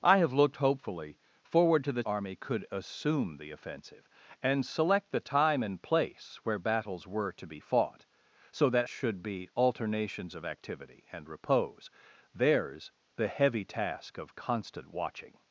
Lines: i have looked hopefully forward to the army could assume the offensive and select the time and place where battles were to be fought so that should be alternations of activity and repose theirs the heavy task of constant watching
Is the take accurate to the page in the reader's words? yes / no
yes